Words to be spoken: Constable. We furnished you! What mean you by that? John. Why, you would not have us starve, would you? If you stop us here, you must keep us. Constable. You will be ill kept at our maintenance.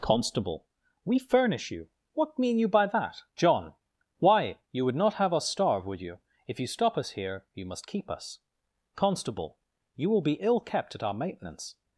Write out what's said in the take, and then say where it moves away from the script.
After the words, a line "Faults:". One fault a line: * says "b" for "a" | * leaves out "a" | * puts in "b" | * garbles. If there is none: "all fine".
Constable. We furnish you! What mean you by that? John. Why, you would not have us starve, would you? If you stop us here, you must keep us. Constable. You will be ill kept at our maintenance.
Faults:
* says "furnish" for "furnished"